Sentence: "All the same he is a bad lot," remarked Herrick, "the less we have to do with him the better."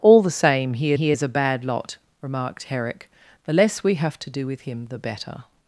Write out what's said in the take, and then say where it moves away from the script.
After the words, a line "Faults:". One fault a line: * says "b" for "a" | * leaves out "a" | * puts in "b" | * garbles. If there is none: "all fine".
"All the same he he is a bad lot," remarked Herrick, "the less we have to do with him the better."
Faults:
* puts in "he"